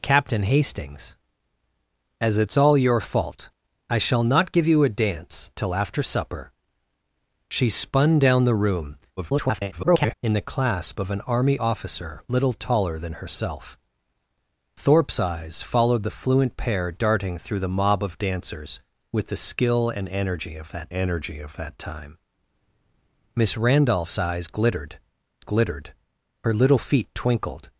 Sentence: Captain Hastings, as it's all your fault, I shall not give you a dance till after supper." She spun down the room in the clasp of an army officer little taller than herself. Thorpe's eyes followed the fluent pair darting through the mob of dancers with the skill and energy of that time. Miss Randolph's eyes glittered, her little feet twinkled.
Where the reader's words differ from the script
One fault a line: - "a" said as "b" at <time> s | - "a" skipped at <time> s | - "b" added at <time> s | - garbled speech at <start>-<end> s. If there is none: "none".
- garbled speech at 9.2-10.1 s
- "energy of that" added at 20.9 s
- "glittered" added at 25.4 s